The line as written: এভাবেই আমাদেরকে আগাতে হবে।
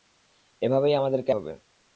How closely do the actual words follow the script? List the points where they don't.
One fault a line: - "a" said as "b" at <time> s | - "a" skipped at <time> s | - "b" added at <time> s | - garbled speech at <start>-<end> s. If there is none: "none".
- "আগাতে" skipped at 1.3 s